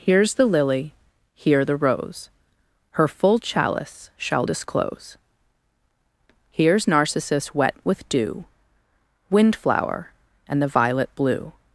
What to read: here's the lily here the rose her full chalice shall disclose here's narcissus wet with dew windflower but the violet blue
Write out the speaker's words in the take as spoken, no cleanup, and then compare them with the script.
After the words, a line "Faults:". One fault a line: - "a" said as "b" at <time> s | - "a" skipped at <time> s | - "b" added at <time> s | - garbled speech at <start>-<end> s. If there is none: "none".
here's the lily here the rose her full chalice shall disclose here's narcissus wet with dew windflower and the violet blue
Faults:
- "but" said as "and" at 10.5 s